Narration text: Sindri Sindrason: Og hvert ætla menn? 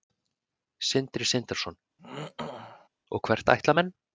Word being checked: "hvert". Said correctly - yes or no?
yes